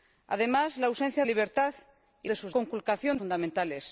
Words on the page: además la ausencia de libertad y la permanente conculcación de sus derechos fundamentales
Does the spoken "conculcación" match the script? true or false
false